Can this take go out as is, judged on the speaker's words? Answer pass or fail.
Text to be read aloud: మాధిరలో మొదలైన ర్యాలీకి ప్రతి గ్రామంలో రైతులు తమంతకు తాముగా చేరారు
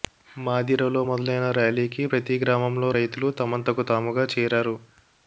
pass